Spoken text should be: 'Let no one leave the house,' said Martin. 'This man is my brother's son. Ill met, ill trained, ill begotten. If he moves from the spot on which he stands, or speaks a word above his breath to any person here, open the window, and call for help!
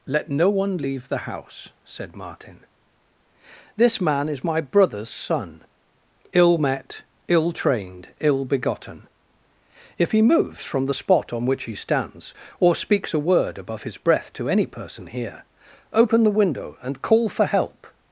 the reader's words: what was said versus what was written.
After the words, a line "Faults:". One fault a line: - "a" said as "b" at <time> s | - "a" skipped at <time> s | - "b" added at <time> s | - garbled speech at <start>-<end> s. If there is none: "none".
'Let no one leave the house,' said Martin. 'This man is my brother's son. Ill met, ill trained, ill begotten. If he moves from the spot on which he stands, or speaks a word above his breath to any person here, open the window, and call for help!
Faults:
none